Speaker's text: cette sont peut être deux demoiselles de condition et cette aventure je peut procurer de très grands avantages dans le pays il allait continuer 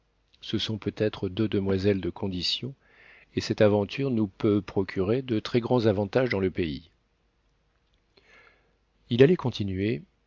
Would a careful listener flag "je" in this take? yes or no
yes